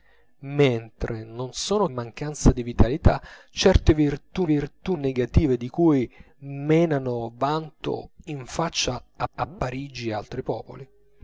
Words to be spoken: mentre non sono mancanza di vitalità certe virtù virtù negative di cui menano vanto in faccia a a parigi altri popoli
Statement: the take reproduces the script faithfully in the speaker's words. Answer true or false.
true